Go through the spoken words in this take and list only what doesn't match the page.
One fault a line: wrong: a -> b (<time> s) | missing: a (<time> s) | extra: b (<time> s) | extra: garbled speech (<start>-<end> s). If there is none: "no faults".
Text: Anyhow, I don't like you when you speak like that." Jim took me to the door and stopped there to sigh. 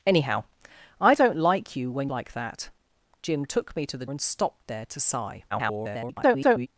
missing: you speak (2.1 s)
missing: door (4.1 s)
extra: garbled speech (5.5-6.7 s)